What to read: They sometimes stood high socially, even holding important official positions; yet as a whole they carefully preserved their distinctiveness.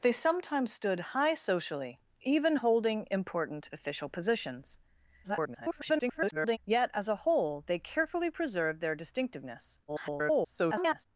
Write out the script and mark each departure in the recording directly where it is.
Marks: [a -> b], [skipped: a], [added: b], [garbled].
They sometimes stood high socially, even holding important official positions; [garbled] yet as a whole they carefully preserved their distinctiveness. [garbled]